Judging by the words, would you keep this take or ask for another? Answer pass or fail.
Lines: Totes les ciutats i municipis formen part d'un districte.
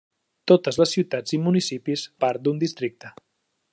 fail